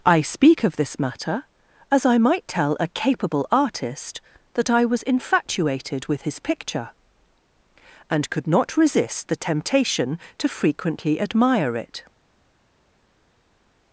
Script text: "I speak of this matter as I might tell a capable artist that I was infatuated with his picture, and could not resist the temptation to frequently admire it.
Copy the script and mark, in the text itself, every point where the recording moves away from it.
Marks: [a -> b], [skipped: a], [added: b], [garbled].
"I speak of this matter as I might tell a capable artist that I was infatuated with his picture, and could not resist the temptation to frequently admire it.